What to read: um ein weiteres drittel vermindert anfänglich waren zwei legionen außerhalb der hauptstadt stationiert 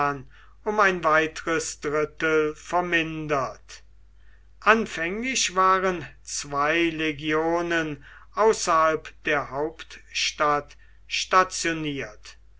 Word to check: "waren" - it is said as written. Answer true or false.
true